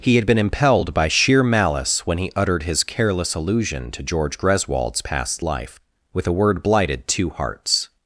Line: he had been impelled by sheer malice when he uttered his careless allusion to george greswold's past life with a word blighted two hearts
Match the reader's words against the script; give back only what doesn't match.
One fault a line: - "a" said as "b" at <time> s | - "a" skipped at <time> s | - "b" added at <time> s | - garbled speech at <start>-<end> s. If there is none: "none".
none